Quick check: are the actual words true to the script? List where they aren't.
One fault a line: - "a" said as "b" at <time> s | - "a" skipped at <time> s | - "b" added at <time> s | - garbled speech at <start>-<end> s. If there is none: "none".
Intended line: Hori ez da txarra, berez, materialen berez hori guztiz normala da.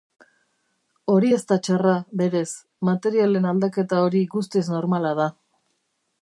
- "berez" said as "aldaketa" at 3.5 s